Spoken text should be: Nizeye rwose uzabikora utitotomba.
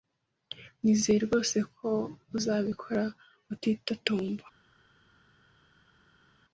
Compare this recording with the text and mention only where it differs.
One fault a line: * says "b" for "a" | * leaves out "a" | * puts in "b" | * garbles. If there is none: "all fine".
* puts in "ko"